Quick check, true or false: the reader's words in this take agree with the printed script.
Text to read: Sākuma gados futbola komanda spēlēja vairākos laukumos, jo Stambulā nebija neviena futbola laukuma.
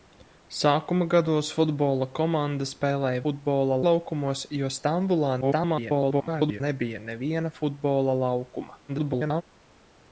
false